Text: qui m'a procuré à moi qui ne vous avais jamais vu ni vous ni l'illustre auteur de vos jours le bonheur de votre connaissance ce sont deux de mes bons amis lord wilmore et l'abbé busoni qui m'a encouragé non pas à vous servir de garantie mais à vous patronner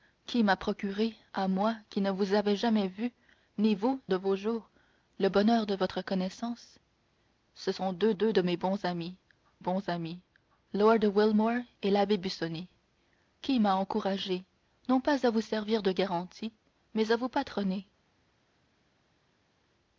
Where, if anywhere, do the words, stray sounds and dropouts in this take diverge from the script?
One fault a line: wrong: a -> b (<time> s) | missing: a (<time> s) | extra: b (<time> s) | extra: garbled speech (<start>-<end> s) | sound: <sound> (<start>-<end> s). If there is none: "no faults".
missing: ni l'illustre auteur (4.0 s)
extra: deux (8.1 s)
extra: bons amis (9.6 s)